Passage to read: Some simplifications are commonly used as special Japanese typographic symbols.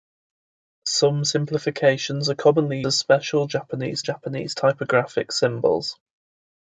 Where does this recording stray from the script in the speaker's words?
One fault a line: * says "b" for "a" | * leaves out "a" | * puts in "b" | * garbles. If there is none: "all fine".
* leaves out "used"
* puts in "Japanese"